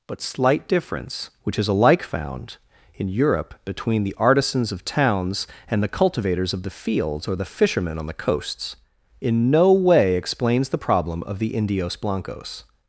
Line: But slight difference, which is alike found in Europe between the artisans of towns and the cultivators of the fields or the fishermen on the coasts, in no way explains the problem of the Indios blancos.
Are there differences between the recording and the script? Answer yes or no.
no